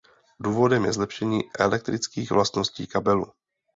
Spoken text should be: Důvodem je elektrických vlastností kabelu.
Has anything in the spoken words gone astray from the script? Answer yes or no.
yes